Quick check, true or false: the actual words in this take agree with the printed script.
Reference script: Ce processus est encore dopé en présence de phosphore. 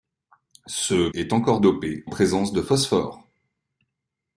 false